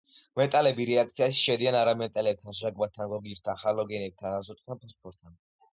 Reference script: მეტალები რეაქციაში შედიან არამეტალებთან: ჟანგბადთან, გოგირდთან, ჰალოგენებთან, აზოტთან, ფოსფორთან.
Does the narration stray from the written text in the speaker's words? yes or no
no